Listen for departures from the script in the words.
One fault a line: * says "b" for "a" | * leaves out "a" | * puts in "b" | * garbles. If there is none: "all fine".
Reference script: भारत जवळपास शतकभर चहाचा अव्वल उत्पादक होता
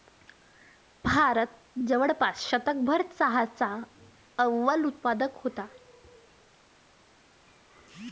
all fine